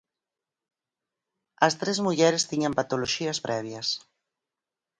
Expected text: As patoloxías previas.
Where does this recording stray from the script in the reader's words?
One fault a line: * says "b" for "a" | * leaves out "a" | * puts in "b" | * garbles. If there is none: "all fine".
* puts in "tres mulleres tiñan"